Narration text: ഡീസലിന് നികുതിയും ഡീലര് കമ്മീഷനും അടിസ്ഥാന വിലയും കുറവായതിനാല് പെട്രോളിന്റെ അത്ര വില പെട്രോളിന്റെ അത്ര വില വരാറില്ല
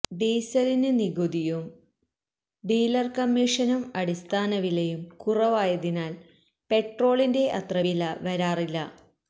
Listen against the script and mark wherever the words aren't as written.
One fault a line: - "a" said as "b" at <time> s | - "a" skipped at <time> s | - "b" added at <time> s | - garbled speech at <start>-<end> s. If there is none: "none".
- "പെട്രോളിന്റെ അത്ര വില" skipped at 8.0 s